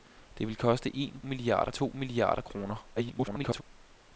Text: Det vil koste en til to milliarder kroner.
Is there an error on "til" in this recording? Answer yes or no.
yes